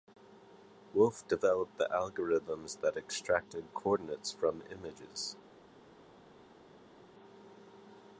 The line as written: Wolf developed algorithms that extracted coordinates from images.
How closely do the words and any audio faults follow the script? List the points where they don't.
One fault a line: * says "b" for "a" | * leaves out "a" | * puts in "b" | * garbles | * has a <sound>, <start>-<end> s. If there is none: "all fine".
* puts in "the"